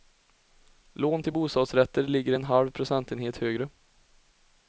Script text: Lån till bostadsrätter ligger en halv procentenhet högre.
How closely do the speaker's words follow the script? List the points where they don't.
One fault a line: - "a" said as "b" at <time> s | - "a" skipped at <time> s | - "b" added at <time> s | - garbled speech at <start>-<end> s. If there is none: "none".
none